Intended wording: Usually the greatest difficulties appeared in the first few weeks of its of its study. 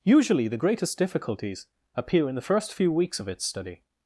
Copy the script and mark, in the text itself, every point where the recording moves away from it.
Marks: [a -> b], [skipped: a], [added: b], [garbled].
Usually the greatest difficulties [appeared -> appear] in the first few weeks of its [skipped: of its] study.